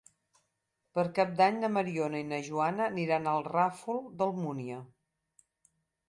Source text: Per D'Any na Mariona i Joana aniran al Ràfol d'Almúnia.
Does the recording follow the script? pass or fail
fail